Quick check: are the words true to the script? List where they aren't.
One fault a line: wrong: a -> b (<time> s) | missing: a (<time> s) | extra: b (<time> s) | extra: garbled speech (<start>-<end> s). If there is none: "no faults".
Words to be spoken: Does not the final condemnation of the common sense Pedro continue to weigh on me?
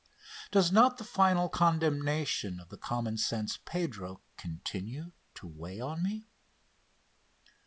no faults